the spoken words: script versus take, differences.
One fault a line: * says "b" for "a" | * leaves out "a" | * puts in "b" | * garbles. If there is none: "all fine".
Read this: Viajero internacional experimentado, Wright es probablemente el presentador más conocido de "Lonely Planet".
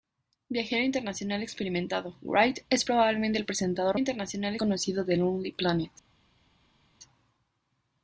* says "internacional" for "más"